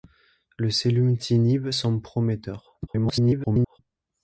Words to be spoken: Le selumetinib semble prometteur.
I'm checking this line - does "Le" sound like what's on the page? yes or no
yes